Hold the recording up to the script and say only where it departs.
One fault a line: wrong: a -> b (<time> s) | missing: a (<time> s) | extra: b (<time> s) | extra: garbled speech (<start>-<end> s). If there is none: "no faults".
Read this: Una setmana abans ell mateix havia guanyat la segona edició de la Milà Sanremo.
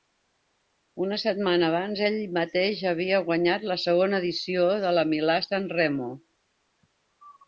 no faults